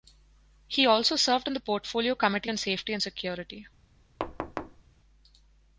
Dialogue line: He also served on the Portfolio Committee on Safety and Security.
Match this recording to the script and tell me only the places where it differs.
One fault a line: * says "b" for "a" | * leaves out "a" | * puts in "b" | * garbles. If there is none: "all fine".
all fine